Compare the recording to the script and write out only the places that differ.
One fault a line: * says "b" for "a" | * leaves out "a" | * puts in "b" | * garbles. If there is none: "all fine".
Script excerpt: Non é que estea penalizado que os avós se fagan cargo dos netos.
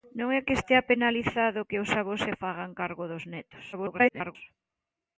* garbles